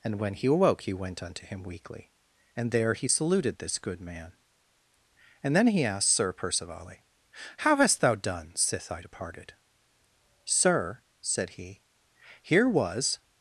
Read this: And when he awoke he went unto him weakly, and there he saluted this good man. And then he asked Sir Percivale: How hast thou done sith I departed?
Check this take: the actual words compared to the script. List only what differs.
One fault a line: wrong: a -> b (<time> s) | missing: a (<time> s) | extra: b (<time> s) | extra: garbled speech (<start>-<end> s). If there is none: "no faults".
extra: Sir said he here was (10.4 s)